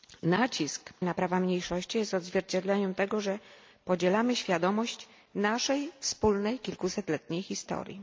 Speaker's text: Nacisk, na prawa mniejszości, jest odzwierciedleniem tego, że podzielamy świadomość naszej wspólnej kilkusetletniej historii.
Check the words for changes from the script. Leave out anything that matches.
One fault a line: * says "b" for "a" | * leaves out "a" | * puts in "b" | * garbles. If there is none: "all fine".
all fine